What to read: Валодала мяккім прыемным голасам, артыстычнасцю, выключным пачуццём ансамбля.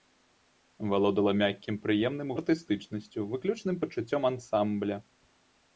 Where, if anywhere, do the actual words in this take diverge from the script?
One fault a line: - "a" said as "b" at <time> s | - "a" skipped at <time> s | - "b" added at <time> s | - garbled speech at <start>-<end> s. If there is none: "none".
- "голасам" skipped at 2.3 s